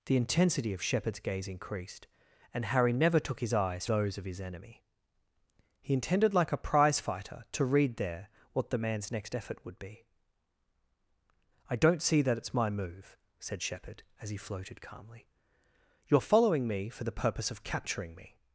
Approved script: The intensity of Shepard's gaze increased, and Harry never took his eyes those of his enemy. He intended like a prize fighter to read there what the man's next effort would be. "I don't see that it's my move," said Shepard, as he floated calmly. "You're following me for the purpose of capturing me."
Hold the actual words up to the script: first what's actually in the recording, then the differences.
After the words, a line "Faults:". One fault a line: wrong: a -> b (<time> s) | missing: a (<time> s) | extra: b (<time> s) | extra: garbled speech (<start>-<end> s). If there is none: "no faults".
The intensity of Shepard's gaze increased, and Harry never took his eyes those of his enemy. He intended like a prize fighter to read there what the man's next effort would be. "I don't see that it's my move," said Shepard, as he floated calmly. "You're following me for the purpose of capturing me."
Faults:
no faults